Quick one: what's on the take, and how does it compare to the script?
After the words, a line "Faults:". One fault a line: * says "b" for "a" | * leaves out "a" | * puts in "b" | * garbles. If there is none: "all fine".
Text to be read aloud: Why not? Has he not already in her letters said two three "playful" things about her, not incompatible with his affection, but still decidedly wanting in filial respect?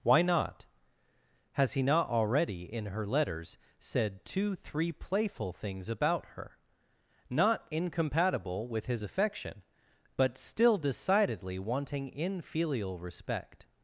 Why not? Has he not already in her letters said two three "playful" things about her, not incompatible with his affection, but still decidedly wanting in filial respect?
Faults:
all fine